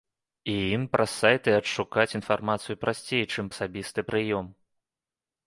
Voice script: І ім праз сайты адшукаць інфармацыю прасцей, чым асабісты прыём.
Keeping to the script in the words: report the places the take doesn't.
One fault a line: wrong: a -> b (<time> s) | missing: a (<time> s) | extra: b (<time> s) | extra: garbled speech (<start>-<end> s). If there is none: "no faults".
no faults